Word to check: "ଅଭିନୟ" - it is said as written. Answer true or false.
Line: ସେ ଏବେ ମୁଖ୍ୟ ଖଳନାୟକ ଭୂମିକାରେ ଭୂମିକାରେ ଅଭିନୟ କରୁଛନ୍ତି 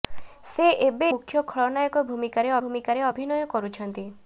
true